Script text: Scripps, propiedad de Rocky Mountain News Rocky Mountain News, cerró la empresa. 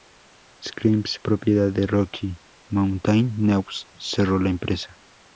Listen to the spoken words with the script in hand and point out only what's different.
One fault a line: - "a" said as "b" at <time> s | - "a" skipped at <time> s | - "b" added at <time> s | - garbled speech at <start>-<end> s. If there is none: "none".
- "Rocky Mountain News" skipped at 3.9 s